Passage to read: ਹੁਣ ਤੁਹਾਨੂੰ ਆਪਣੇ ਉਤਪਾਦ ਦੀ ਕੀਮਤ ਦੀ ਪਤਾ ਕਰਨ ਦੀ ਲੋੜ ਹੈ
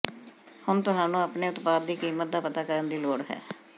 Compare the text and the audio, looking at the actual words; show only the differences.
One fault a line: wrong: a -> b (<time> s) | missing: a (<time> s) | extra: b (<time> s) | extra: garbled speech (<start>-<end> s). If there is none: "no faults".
wrong: ਦੀ -> ਦਾ (2.3 s)